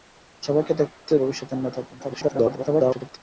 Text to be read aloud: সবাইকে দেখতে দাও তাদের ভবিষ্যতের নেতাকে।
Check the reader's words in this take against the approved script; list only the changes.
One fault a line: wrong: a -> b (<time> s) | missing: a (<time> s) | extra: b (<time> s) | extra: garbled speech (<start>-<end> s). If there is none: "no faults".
missing: দাও তাদের (1.1 s)
extra: garbled speech (2.0-3.2 s)